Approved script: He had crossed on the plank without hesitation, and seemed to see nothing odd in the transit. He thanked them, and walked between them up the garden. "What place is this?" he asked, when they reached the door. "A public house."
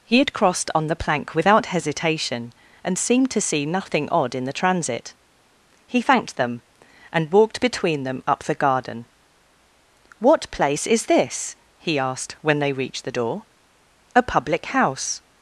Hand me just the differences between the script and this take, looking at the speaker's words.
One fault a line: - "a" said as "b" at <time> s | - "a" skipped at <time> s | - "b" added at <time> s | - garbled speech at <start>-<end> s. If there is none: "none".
none